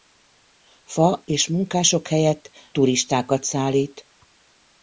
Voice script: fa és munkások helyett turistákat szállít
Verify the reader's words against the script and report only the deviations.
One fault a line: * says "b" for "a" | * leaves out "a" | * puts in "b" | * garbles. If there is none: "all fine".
all fine